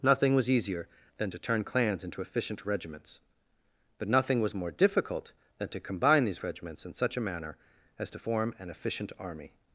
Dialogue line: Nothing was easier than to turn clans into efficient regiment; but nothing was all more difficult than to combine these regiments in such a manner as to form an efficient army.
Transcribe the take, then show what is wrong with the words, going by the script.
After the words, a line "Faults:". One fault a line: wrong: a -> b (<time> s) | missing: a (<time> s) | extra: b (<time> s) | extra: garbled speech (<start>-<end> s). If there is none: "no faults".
Nothing was easier than to turn clans into efficient regiments; but nothing was more difficult than to combine these regiments in such a manner as to form an efficient army.
Faults:
wrong: regiment -> regiments (2.7 s)
missing: all (4.5 s)